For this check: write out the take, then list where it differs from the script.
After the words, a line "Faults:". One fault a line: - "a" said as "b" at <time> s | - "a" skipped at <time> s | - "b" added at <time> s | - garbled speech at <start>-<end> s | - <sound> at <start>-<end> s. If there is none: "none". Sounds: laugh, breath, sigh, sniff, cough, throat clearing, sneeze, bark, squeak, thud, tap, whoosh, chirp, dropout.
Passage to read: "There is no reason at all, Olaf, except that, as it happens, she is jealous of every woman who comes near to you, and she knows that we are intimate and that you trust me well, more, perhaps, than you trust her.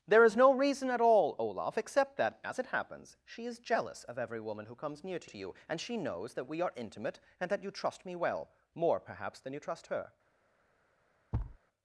"There is no reason at all, Olaf, except that, as it happens, she is jealous of every woman who comes near to to you, and she knows that we are intimate and that you trust me well, more, perhaps, than you trust her.
Faults:
- "to" added at 5.3 s
- thud at 11.3-11.6 s